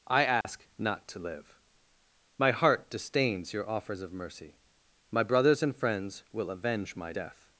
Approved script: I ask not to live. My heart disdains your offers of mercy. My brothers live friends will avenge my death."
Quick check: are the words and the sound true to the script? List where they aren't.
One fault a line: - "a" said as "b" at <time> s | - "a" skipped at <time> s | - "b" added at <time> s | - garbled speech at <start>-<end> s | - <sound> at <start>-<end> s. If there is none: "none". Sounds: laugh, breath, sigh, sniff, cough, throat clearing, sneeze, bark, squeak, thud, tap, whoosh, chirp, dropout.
- dropout at 0.4-0.4 s
- "live" said as "and" at 5.6 s